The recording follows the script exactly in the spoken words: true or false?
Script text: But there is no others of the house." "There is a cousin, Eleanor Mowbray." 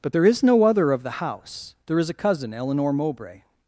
false